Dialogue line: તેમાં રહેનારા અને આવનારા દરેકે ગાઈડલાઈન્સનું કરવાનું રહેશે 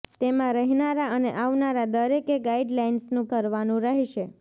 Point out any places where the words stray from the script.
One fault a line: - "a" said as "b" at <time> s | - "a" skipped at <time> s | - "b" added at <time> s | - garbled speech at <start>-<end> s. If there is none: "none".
none